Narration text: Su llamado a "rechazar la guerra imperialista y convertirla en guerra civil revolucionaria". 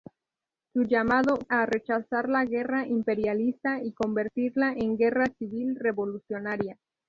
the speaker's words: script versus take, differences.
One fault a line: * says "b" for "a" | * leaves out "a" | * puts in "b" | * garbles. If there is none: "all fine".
all fine